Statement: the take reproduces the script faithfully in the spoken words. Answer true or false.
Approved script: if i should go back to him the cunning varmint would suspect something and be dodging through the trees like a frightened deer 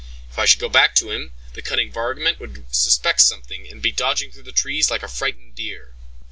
true